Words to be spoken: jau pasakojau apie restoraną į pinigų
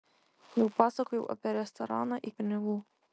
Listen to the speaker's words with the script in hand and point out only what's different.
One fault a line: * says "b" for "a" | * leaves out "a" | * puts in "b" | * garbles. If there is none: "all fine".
all fine